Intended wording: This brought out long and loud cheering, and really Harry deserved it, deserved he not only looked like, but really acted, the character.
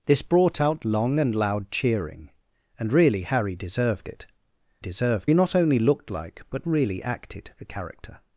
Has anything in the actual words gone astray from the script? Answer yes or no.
no